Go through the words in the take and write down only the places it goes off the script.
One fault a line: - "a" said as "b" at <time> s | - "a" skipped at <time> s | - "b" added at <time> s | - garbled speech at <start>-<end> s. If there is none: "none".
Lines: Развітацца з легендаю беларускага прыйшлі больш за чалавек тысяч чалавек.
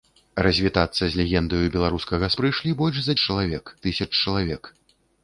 none